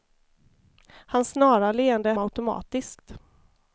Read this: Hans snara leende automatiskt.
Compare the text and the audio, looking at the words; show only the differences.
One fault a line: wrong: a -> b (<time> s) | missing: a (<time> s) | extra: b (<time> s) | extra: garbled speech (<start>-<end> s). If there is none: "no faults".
no faults